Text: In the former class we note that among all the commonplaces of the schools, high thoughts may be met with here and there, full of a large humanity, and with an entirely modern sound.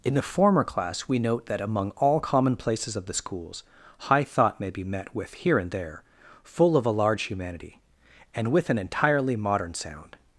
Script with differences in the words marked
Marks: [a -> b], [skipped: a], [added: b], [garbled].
In the former class we note that among all [skipped: the] commonplaces of the schools, high [thoughts -> thought] may be met with here and there, full of a large humanity, and with an entirely modern sound.